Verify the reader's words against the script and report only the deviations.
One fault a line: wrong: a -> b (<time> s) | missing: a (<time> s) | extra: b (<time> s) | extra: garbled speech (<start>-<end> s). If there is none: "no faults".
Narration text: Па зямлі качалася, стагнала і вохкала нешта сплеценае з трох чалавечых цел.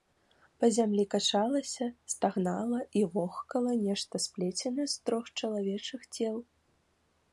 no faults